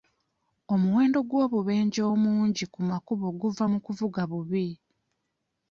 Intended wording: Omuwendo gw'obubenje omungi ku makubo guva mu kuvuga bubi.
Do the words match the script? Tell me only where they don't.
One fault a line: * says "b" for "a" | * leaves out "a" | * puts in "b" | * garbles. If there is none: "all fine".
all fine